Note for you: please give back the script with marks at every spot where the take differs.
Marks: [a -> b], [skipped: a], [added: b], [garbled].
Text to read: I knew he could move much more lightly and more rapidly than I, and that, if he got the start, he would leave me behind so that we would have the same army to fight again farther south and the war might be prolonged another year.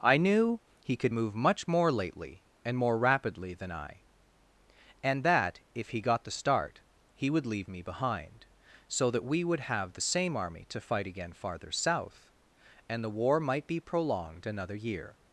I knew he could move much more [lightly -> lately] and more rapidly than I, and that, if he got the start, he would leave me behind so that we would have the same army to fight again farther south and the war might be prolonged another year.